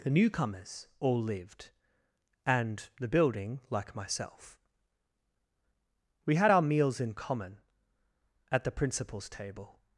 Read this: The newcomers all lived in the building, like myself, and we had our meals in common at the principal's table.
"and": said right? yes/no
no